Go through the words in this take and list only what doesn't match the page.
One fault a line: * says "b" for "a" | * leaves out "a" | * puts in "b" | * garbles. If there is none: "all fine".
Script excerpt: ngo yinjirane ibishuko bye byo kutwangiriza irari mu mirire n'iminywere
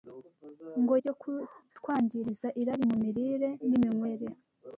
* leaves out "yinjirane ibishuko bye"